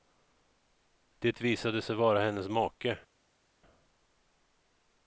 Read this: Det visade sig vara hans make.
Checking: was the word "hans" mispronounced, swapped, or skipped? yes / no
yes